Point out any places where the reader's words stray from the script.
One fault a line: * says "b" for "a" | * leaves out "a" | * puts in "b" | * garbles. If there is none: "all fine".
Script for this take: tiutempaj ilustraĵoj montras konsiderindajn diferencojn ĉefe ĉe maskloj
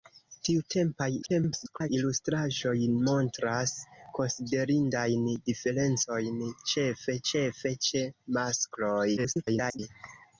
* garbles
* puts in "ĉefe"
* garbles